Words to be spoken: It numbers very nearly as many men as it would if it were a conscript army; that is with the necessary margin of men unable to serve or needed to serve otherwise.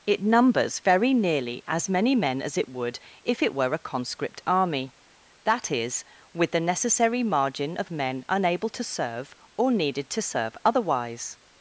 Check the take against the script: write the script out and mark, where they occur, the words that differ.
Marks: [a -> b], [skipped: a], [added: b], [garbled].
It numbers very nearly as many men as it would if it were a conscript army; that is with the necessary margin of men unable to serve or needed to serve otherwise.